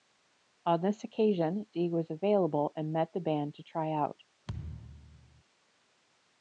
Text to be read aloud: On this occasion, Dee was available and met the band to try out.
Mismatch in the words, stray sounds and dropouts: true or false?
true